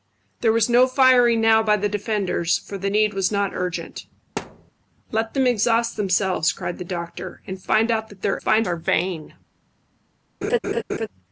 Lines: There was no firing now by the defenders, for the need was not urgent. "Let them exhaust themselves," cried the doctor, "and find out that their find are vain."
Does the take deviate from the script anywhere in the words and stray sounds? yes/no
yes